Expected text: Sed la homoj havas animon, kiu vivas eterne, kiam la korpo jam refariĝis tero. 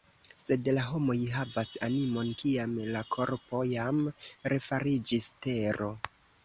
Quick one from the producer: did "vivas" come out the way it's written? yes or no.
no